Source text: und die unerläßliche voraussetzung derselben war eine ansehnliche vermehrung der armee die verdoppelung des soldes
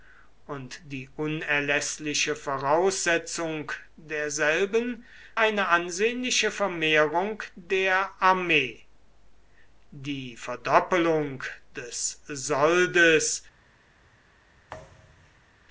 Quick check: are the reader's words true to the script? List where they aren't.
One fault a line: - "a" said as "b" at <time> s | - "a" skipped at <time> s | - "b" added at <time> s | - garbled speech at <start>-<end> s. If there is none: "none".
- "war" skipped at 5.0 s